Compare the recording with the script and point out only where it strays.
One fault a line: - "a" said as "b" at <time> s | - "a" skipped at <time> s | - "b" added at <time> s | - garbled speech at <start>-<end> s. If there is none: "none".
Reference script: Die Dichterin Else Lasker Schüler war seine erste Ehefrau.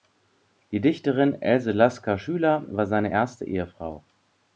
none